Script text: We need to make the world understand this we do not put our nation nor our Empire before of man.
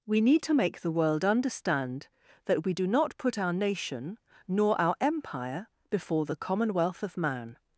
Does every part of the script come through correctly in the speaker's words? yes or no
no